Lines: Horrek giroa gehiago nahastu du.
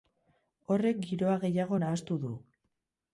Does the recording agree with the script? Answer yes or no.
yes